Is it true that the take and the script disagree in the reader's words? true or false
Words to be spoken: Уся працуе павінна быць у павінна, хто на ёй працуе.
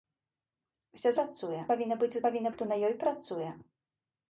false